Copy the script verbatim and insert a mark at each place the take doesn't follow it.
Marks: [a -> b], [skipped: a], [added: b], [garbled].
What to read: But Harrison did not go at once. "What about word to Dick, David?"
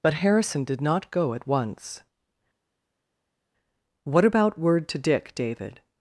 But Harrison did not go at once. "What about word to Dick, David?"